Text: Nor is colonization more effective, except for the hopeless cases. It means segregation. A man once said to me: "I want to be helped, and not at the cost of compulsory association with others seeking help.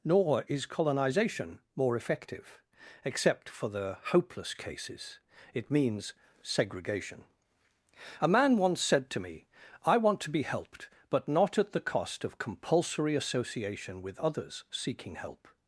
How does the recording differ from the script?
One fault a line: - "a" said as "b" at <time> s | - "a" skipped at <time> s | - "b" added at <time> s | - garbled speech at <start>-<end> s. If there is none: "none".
- "and" said as "but" at 11.1 s